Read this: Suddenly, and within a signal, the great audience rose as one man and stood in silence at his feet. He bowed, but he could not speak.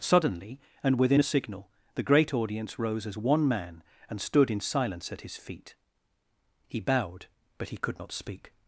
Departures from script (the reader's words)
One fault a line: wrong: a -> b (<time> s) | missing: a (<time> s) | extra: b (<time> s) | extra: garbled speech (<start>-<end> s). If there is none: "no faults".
no faults